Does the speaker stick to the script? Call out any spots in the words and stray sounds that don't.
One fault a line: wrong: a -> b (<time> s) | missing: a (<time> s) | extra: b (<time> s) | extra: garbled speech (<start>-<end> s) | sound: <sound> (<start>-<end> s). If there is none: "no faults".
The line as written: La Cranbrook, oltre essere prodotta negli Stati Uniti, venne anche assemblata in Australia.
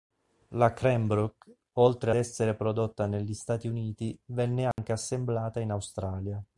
sound: dropout (4.7-4.8 s)